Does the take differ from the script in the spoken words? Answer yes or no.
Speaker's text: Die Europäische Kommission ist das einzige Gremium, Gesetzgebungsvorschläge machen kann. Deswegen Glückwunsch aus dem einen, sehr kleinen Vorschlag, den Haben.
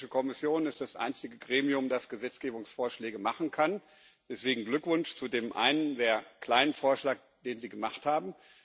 yes